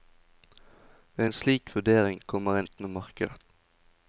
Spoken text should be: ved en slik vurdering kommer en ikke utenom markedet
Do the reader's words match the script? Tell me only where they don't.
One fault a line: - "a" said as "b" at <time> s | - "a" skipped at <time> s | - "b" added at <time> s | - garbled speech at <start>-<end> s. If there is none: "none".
- "ikke" skipped at 2.7 s